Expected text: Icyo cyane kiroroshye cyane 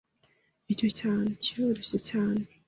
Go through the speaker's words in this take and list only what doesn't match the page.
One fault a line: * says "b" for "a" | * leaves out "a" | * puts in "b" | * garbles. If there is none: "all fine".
all fine